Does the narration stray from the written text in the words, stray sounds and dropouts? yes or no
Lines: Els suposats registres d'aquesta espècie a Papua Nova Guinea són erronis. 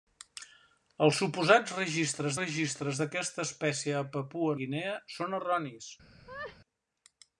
yes